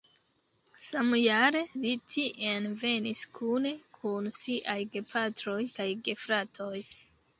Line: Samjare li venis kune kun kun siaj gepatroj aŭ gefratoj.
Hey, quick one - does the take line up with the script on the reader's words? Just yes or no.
no